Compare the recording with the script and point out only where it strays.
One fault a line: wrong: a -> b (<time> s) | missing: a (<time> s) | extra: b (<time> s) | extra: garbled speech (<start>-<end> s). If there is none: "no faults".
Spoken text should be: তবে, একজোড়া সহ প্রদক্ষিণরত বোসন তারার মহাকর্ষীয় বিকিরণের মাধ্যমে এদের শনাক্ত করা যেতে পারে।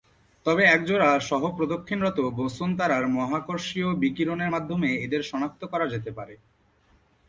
no faults